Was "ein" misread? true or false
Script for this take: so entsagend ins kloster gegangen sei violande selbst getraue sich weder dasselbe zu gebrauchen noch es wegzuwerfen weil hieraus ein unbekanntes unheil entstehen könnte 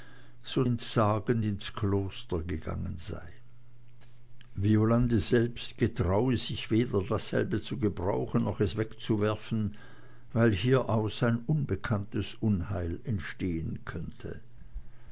false